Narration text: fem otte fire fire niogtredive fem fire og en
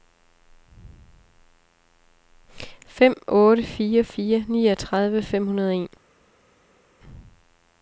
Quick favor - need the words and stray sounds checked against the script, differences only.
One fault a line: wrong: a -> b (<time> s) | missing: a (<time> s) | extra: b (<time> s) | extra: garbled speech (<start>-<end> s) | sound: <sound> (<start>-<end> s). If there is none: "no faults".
wrong: fire -> hundrede (5.5 s)